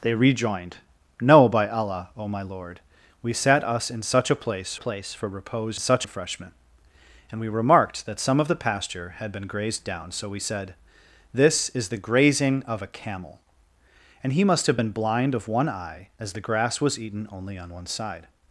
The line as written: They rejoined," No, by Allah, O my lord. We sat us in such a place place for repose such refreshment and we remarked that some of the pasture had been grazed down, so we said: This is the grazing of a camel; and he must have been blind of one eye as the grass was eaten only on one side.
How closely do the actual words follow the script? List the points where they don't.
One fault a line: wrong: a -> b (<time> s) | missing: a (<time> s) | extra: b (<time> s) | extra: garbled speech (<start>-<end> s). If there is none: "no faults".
no faults